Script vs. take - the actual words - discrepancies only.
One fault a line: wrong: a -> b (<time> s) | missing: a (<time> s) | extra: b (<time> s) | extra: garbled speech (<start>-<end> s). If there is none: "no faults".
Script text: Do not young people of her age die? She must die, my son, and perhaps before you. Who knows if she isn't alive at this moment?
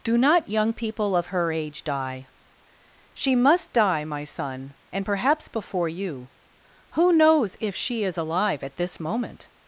wrong: isn't -> is (8.0 s)